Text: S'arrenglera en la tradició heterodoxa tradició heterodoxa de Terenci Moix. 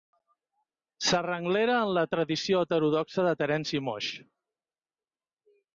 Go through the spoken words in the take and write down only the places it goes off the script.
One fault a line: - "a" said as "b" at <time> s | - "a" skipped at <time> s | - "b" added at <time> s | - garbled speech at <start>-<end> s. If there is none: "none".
- "tradició heterodoxa" skipped at 3.3 s